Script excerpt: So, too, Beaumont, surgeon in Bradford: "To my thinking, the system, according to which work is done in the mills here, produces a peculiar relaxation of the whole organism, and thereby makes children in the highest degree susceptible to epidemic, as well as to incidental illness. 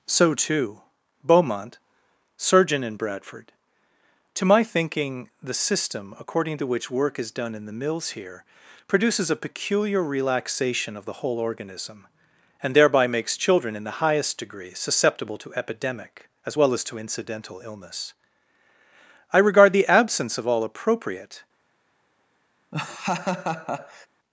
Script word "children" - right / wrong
right